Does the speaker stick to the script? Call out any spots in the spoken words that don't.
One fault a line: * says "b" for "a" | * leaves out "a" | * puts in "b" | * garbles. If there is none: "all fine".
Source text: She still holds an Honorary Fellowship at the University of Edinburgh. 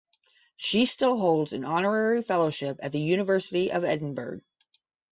all fine